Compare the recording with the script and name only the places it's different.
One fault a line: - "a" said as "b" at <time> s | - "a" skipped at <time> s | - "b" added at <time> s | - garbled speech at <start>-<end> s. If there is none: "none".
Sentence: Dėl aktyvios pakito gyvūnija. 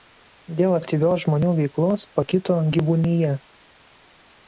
- "žmonių veiklos" added at 1.3 s